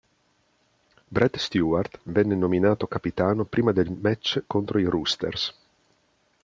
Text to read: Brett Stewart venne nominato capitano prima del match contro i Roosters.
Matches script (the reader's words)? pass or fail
pass